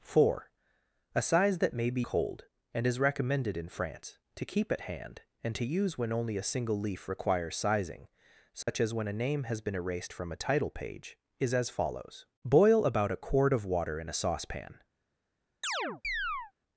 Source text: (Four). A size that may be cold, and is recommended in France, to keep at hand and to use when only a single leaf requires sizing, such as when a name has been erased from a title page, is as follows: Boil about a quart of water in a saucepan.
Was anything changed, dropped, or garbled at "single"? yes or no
no